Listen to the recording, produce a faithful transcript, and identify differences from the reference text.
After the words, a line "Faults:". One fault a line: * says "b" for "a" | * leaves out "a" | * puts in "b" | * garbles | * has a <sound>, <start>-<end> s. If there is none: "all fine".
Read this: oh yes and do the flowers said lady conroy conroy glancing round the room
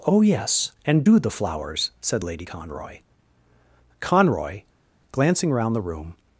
oh yes and do the flowers said lady conroy conroy glancing round the room
Faults:
all fine